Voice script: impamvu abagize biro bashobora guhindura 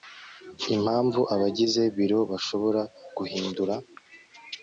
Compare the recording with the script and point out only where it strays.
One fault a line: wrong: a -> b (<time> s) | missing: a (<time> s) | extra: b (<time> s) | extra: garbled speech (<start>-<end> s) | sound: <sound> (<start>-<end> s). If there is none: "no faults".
no faults